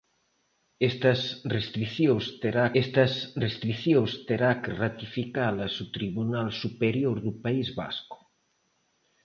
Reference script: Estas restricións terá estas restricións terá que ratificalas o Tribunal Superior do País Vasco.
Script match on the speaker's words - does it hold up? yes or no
yes